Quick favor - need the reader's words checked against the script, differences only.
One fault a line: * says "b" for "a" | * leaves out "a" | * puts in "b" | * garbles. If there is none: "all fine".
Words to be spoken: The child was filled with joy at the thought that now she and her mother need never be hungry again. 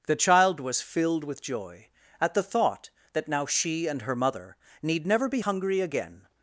all fine